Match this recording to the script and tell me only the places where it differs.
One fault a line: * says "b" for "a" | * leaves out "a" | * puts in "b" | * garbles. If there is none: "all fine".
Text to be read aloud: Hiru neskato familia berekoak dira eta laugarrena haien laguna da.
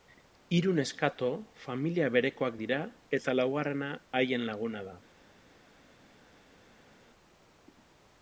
all fine